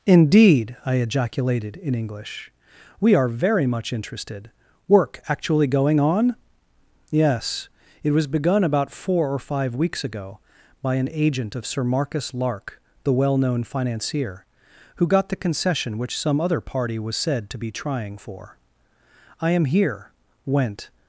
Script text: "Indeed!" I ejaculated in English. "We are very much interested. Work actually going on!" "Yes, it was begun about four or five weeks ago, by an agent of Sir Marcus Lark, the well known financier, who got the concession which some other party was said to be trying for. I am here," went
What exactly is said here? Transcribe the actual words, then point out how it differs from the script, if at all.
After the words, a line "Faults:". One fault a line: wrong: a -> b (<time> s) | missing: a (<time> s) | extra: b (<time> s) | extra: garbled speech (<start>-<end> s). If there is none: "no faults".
"Indeed!" I ejaculated in English. "We are very much interested. Work actually going on!" "Yes, it was begun about four or five weeks ago, by an agent of Sir Marcus Lark, the well known financier, who got the concession which some other party was said to be trying for. I am here," went
Faults:
no faults